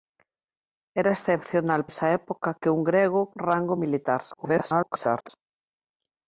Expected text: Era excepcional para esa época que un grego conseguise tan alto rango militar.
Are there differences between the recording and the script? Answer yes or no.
yes